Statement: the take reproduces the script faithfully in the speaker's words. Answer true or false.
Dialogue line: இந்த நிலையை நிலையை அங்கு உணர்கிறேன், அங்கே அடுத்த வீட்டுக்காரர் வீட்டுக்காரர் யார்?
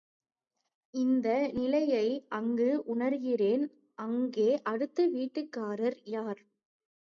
false